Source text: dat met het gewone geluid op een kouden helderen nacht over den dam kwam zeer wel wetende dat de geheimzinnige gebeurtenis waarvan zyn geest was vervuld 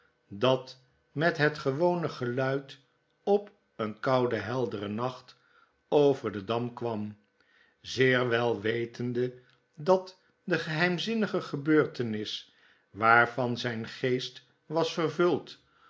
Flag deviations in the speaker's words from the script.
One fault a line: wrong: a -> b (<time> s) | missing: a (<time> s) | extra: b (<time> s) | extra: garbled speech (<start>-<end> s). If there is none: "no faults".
no faults